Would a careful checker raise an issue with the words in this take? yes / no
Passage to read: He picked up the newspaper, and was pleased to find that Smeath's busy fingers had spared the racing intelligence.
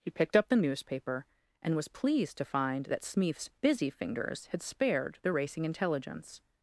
no